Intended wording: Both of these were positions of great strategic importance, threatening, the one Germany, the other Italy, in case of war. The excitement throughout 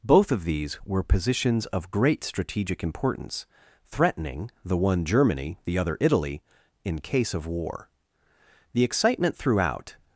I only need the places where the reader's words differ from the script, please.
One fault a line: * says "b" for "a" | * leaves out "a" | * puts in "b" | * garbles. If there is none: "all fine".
all fine